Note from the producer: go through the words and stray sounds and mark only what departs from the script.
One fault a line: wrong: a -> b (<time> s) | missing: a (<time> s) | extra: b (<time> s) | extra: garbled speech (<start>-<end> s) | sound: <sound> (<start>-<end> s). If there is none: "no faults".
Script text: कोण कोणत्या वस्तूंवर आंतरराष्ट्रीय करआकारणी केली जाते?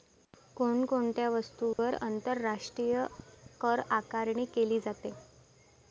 sound: dropout (1.7-1.8 s)